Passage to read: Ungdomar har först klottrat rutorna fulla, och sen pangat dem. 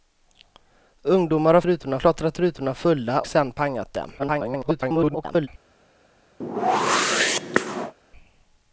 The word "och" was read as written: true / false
false